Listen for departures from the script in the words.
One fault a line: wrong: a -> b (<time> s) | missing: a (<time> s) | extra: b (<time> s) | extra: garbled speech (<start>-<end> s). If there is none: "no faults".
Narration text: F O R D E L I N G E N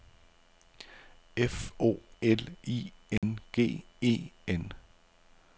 missing: R D E (2.0 s)